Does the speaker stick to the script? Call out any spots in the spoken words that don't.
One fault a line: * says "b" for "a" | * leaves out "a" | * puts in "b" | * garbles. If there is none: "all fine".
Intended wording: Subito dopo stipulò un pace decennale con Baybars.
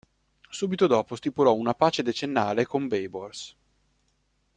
* says "una" for "un"